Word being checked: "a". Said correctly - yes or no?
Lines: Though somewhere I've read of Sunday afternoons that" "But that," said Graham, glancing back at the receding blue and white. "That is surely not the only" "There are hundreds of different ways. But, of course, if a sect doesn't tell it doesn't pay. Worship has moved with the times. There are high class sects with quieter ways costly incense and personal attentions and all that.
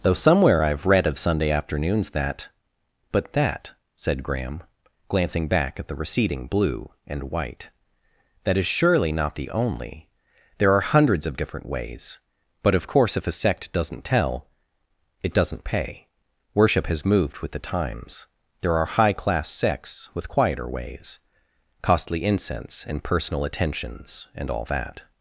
yes